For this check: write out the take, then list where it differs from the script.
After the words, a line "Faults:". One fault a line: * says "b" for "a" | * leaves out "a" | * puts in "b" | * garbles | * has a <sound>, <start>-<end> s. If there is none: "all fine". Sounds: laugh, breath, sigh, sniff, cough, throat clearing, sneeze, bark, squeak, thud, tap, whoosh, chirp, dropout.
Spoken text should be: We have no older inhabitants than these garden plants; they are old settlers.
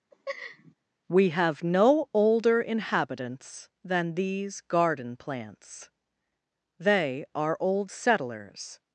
We have no older inhabitants than these garden plants; they are old settlers.
Faults:
* has a laugh, 0.1-0.7 s